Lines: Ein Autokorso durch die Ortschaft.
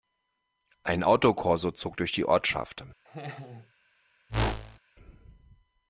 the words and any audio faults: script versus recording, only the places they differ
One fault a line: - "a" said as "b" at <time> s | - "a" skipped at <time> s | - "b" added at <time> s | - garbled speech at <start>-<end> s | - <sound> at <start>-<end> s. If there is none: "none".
- "zog" added at 1.7 s
- laugh at 3.0-3.7 s
- whoosh at 4.3-4.8 s